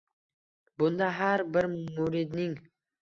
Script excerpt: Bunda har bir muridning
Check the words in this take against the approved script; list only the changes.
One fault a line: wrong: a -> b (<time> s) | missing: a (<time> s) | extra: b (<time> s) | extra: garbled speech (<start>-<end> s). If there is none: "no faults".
no faults